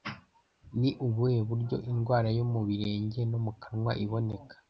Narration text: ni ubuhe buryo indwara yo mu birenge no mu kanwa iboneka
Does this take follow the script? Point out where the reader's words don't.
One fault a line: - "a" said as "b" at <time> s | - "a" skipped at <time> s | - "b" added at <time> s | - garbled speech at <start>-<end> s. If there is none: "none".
none